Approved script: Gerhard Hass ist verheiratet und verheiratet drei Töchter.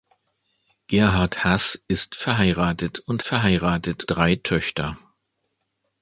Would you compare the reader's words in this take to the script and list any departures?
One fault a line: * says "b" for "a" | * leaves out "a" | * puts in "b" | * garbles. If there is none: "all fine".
all fine